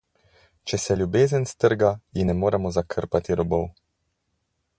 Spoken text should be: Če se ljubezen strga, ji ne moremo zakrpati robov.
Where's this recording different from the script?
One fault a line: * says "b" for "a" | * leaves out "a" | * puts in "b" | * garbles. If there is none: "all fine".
all fine